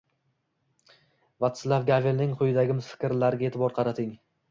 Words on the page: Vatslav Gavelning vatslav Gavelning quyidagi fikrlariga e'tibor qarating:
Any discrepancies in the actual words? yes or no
yes